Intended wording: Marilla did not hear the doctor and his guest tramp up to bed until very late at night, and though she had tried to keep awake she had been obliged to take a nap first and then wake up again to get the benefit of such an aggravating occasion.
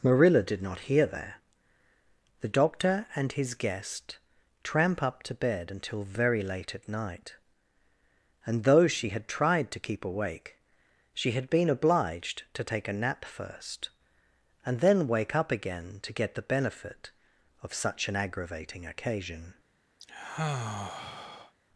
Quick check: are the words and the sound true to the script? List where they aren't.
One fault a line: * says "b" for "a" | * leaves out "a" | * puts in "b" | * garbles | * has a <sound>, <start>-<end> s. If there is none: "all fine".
* puts in "there"
* has a sigh, 20.0-21.5 s